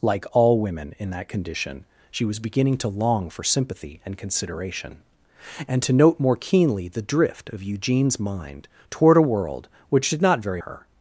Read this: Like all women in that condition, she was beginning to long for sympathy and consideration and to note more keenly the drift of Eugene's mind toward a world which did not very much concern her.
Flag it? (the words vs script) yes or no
yes